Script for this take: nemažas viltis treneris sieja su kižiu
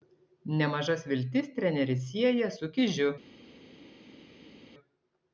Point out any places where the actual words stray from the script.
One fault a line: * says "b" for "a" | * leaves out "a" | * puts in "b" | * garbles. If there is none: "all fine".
all fine